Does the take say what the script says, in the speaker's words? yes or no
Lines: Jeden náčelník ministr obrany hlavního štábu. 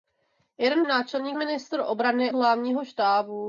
yes